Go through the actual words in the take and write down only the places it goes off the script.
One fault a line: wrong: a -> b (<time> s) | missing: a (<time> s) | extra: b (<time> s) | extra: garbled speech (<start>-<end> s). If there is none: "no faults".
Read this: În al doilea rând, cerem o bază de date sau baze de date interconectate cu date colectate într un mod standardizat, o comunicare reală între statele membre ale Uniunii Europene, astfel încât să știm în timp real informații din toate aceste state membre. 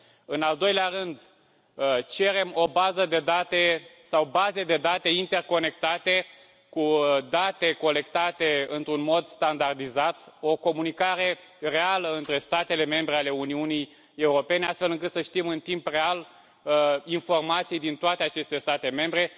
no faults